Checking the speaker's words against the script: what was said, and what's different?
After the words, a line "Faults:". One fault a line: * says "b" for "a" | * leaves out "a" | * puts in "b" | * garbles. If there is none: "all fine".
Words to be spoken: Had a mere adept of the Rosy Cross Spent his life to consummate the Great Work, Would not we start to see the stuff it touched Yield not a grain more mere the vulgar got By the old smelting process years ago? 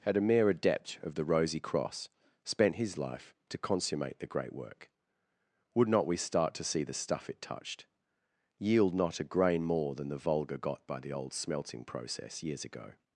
Had a mere adept of the Rosy Cross Spent his life to consummate the Great Work, Would not we start to see the stuff it touched Yield not a grain more than the vulgar got By the old smelting process years ago?
Faults:
* says "than" for "mere"